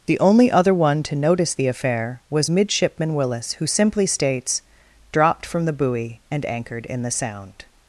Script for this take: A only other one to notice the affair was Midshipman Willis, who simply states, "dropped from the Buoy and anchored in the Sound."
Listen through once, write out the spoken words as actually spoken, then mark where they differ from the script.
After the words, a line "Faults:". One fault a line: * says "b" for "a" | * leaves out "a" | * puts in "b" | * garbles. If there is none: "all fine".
The only other one to notice the affair was Midshipman Willis, who simply states, "dropped from the Buoy and anchored in the Sound."
Faults:
* says "The" for "A"